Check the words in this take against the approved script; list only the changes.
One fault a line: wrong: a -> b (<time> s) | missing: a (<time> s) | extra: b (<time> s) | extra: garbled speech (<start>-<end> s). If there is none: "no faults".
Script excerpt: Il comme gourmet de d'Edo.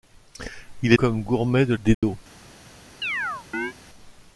no faults